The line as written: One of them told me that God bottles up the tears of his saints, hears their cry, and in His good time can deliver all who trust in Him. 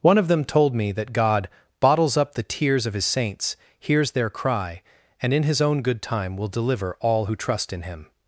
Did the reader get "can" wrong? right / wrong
wrong